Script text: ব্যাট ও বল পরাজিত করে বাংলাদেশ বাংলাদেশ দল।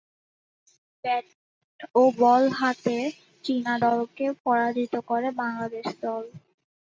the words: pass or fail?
fail